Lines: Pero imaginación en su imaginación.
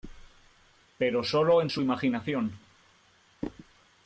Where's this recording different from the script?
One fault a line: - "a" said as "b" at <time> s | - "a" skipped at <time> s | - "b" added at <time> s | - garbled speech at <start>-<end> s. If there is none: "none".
- "imaginación" said as "sólo" at 1.2 s